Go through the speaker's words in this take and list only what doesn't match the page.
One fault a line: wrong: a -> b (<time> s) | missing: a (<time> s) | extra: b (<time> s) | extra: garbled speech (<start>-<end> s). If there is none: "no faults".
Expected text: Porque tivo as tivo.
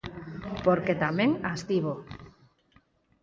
wrong: tivo -> tamén (1.0 s)